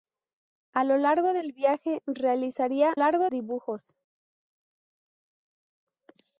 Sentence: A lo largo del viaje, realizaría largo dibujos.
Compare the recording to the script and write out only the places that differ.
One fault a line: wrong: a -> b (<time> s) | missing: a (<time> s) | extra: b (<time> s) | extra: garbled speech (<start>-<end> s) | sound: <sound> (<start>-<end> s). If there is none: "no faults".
no faults